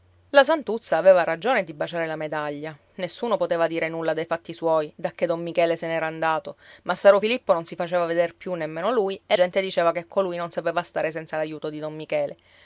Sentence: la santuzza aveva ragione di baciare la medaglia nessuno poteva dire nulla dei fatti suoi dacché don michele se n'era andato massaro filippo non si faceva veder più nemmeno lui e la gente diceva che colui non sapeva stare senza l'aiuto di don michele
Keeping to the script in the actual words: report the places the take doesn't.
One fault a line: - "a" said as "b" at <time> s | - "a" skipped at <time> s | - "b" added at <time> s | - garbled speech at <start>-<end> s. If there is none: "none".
- "la" skipped at 9.3 s